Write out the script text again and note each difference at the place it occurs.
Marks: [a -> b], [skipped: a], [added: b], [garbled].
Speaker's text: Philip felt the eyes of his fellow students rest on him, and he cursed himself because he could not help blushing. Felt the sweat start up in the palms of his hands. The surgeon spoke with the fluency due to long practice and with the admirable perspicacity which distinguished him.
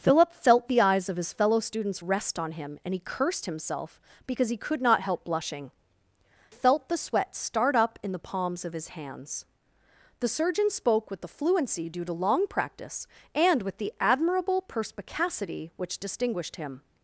Philip felt the eyes of his fellow students rest on him, and he cursed himself because he could not help blushing. Felt the sweat start up in the palms of his hands. The surgeon spoke with the fluency due to long practice and with the admirable perspicacity which distinguished him.